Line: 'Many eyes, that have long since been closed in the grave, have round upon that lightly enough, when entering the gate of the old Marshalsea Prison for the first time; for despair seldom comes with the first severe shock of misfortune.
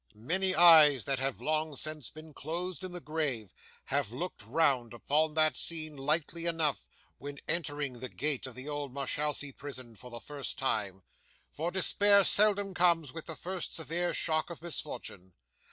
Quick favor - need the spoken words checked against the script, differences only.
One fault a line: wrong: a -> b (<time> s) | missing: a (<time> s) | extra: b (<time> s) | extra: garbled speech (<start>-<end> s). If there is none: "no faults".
extra: looked (4.1 s)
extra: scene (5.5 s)